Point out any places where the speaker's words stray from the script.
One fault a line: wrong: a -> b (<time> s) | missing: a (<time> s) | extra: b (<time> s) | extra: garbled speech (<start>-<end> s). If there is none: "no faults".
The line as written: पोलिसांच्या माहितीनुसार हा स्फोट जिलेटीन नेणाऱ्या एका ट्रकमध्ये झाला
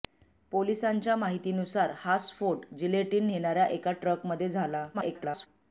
extra: garbled speech (4.9-5.5 s)